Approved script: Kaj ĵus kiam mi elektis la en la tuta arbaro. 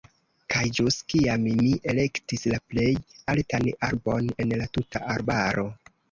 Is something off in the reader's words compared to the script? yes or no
yes